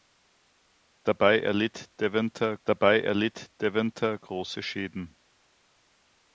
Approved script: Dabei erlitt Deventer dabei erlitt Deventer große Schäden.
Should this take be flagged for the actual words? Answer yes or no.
no